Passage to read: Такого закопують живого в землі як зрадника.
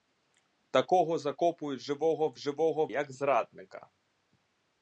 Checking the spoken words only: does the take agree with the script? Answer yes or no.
no